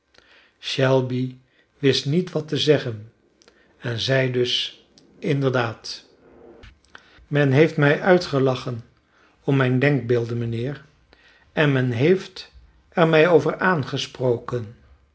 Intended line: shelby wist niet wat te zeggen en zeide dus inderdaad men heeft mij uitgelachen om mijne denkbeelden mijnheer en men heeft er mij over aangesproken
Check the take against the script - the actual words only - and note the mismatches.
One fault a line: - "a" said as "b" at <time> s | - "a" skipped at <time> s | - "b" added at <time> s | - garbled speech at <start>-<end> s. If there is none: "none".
none